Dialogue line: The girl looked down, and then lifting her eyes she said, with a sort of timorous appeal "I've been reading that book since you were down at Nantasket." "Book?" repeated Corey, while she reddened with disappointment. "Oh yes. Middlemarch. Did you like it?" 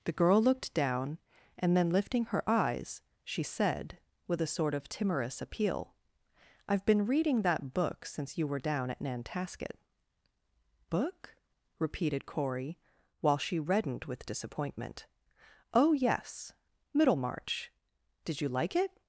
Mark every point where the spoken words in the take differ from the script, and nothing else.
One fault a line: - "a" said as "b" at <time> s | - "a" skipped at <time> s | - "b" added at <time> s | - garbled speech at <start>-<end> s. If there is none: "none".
none